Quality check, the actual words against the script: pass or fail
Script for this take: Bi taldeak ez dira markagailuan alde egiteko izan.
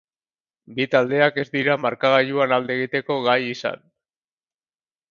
fail